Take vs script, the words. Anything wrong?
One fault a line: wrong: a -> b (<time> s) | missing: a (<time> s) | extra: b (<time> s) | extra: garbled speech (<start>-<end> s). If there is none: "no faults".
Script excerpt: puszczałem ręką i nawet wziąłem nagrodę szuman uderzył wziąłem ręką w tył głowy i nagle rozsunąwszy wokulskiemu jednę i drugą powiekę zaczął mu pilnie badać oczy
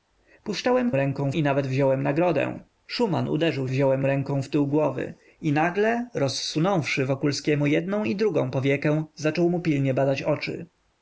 no faults